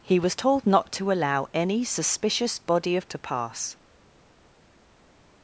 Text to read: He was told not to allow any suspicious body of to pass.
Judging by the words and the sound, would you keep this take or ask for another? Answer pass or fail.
pass